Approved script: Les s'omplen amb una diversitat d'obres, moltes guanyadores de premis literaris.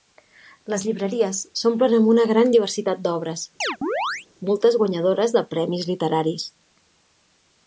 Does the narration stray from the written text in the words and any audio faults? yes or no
yes